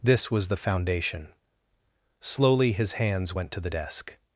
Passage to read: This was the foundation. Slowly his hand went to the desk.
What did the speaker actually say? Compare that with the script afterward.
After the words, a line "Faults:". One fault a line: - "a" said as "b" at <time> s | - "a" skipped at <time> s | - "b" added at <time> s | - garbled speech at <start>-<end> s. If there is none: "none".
This was the foundation. Slowly his hands went to the desk.
Faults:
- "hand" said as "hands" at 2.9 s